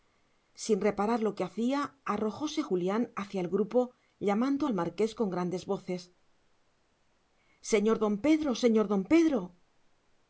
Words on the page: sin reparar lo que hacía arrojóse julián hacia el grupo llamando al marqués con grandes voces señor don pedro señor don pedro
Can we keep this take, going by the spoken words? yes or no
yes